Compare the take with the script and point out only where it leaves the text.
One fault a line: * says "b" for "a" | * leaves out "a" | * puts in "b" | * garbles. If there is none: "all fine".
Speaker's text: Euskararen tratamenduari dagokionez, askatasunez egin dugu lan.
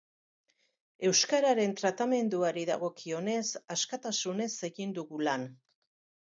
all fine